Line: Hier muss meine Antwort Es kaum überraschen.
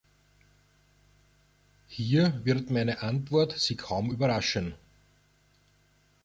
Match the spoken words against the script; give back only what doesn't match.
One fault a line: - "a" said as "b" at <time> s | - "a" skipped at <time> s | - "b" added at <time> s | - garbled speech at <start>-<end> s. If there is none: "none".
- "muss" said as "wird" at 2.4 s
- "Es" said as "Sie" at 3.6 s